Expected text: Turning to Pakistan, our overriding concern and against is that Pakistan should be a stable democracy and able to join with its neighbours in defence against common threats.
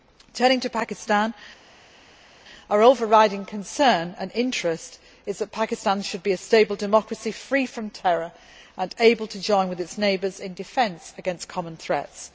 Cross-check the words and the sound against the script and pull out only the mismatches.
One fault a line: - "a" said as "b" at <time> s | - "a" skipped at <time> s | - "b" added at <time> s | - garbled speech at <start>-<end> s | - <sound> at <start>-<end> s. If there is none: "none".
- "against" said as "interest" at 4.3 s
- "free from terror" added at 7.3 s